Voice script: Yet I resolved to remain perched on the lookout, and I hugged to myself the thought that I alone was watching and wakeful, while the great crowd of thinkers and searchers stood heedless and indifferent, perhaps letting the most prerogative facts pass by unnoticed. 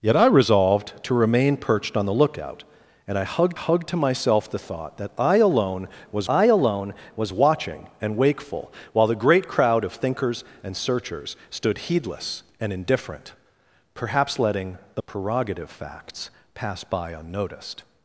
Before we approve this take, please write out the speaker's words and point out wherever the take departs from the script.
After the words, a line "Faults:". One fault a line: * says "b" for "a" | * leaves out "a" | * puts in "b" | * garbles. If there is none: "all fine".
Yet I resolved to remain perched on the lookout, and I hugged hugged to myself the thought that I alone was I alone was watching and wakeful, while the great crowd of thinkers and searchers stood heedless and indifferent, perhaps letting the prerogative facts pass by unnoticed.
Faults:
* puts in "hugged"
* puts in "I alone was"
* leaves out "most"